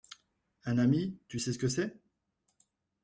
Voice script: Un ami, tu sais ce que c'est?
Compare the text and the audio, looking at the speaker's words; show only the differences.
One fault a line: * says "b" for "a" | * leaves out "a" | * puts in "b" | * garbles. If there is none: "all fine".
all fine